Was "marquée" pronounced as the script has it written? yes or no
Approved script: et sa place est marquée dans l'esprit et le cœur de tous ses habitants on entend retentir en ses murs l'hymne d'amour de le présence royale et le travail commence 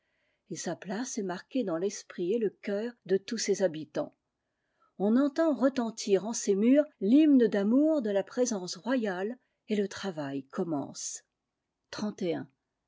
yes